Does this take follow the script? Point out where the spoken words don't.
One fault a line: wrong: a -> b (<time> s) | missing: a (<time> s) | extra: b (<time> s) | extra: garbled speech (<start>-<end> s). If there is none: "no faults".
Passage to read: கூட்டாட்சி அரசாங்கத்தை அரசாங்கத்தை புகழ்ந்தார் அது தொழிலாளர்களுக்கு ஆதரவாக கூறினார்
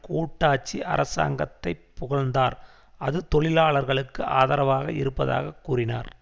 missing: அரசாங்கத்தை (1.7 s)
extra: இருப்பதாக (4.9 s)